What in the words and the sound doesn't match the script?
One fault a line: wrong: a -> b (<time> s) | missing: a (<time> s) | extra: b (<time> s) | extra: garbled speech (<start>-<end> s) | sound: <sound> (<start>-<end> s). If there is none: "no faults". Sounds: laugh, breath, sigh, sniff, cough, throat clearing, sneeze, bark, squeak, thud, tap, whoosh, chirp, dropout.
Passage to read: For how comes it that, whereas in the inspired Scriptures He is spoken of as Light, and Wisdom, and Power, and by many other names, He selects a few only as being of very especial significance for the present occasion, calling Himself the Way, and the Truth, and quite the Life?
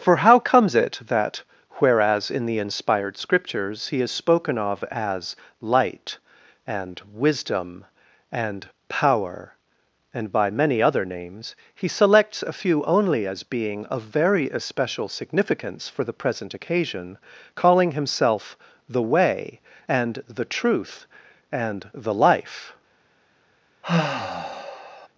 missing: quite (21.9 s)
sound: sigh (23.8-25.1 s)